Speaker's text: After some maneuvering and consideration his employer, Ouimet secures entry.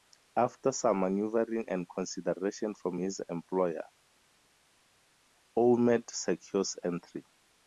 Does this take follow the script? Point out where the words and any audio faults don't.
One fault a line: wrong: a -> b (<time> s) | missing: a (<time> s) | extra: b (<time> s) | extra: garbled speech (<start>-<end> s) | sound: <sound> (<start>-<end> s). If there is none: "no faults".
extra: from (2.7 s)